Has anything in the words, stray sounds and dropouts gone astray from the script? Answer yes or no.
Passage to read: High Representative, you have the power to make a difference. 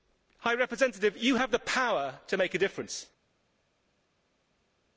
no